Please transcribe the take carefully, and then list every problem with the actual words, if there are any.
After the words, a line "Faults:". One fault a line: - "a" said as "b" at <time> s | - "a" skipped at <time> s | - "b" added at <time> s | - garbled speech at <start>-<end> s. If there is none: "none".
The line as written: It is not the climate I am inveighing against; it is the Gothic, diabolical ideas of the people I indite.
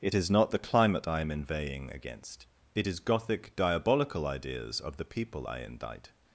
It is not the climate I am inveighing against; it is Gothic, diabolical ideas of the people I indite.
Faults:
- "the" skipped at 3.0 s